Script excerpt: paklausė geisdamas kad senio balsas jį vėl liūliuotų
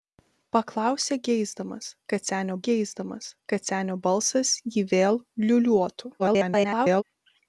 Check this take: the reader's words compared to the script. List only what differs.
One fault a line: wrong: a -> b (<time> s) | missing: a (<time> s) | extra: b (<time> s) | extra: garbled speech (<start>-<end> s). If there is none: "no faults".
extra: geisdamas kad senio (2.7 s)
extra: garbled speech (6.2-7.0 s)